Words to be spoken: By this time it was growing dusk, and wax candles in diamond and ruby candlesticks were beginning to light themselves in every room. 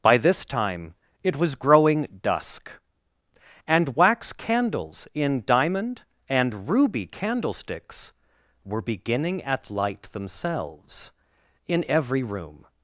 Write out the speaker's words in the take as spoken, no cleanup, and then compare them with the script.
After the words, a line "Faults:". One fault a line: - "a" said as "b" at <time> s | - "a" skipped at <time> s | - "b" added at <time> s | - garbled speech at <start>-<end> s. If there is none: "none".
By this time it was growing dusk, and wax candles in diamond and ruby candlesticks were beginning at light themselves in every room.
Faults:
- "to" said as "at" at 9.4 s